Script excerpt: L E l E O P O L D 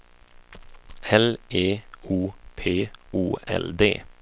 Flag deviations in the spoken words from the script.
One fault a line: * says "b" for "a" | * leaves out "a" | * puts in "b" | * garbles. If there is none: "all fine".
* leaves out "l E"